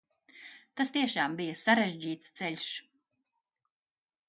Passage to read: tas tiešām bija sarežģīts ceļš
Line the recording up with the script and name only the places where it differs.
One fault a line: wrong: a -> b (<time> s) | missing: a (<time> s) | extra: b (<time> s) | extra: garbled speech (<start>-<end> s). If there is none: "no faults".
no faults